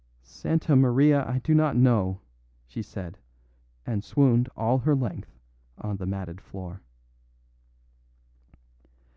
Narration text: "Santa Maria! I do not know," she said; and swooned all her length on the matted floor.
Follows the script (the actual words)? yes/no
yes